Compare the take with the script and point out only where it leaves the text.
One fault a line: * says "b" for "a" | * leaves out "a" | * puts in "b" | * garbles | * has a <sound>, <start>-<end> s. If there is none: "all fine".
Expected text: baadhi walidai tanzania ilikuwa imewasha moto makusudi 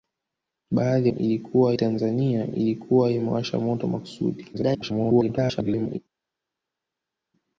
* says "ilikuwa" for "walidai"
* garbles